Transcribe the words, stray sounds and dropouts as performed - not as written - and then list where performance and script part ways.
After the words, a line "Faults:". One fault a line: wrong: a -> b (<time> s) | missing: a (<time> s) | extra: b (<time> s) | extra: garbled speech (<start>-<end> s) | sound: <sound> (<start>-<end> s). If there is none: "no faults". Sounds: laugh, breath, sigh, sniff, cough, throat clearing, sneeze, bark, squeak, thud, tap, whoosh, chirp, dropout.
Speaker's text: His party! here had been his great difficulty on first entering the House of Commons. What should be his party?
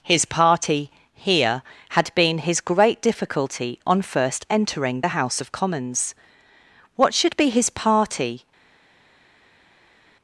His party! here had been his great difficulty on first entering the House of Commons. What should be his party?
Faults:
no faults